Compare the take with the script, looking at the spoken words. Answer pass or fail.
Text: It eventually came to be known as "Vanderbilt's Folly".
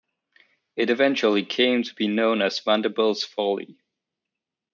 pass